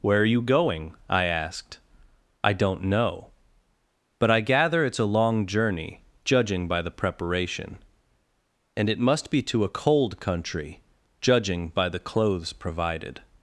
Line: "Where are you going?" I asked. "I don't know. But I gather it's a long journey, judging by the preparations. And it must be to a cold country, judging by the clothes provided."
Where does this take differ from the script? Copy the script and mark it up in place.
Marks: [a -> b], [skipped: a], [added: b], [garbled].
"Where are you going?" I asked. "I don't know. But I gather it's a long journey, judging by the [preparations. -> preparation] And it must be to a cold country, judging by the clothes provided."